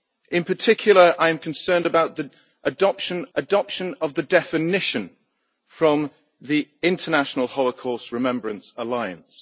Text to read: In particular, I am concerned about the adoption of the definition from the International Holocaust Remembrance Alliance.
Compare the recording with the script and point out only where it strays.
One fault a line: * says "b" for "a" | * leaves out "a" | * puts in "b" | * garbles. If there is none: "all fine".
* puts in "adoption"